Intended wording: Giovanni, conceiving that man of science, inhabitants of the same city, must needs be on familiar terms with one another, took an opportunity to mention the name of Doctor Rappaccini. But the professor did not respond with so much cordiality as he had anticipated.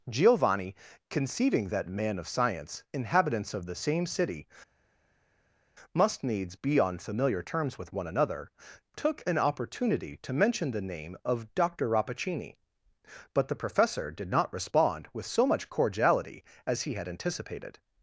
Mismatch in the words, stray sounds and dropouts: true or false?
false